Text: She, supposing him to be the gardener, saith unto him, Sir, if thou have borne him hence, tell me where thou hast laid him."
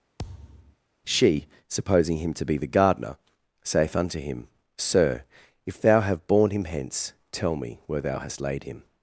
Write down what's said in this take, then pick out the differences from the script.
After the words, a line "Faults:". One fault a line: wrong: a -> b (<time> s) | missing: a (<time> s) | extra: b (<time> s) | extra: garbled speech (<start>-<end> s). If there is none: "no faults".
She, supposing him to be the gardener, saith unto him, Sir, if thou have borne him hence, tell me where thou hast laid him."
Faults:
no faults